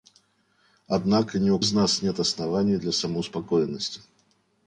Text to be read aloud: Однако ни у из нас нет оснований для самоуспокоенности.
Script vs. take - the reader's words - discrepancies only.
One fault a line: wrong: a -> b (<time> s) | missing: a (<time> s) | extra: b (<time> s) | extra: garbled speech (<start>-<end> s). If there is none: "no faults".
no faults